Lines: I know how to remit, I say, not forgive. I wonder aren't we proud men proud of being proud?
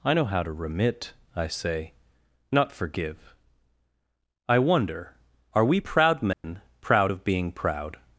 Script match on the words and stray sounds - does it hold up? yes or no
no